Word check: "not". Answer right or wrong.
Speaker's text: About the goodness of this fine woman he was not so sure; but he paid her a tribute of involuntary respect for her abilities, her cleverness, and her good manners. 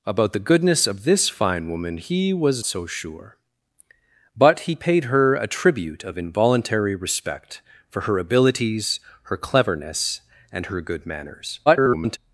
wrong